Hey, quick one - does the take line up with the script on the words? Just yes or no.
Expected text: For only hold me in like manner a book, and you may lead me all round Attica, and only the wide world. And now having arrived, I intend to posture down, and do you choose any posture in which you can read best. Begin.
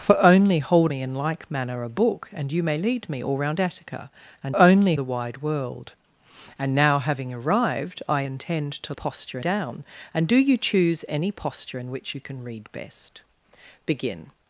yes